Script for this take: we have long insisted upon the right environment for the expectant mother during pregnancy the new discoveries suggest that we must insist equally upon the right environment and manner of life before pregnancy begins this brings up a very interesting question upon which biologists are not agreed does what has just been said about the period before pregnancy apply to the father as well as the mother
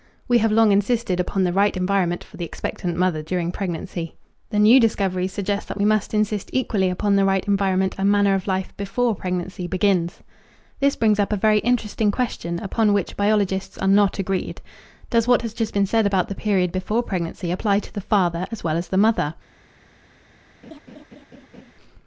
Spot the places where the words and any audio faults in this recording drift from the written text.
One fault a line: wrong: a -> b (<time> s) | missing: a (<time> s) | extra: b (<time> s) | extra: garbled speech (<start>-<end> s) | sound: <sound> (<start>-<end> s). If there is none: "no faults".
sound: laugh (20.6-21.7 s)